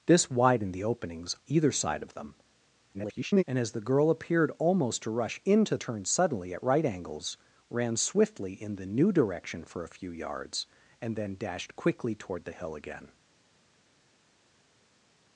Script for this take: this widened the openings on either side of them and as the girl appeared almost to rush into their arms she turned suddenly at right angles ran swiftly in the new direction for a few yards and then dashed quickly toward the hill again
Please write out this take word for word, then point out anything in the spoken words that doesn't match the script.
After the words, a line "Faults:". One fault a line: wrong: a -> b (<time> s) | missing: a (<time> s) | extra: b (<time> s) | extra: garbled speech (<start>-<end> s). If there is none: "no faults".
this widened the openings either side of them [garbled] and as the girl appeared almost to rush into turned suddenly at right angles ran swiftly in the new direction for a few yards and then dashed quickly toward the hill again
Faults:
missing: on (1.4 s)
extra: garbled speech (2.9-3.4 s)
missing: their arms she (5.8 s)